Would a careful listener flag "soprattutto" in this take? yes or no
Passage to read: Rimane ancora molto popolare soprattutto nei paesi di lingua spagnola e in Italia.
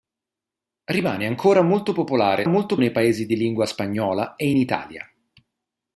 yes